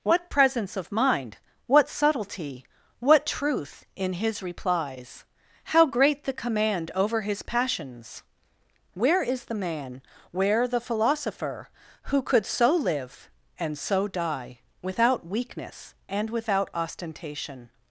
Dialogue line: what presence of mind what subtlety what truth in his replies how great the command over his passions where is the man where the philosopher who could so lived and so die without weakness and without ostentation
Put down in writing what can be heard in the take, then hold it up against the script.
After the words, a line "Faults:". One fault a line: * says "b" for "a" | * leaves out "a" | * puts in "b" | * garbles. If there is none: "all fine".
what presence of mind what subtlety what truth in his replies how great the command over his passions where is the man where the philosopher who could so live and so die without weakness and without ostentation
Faults:
* says "live" for "lived"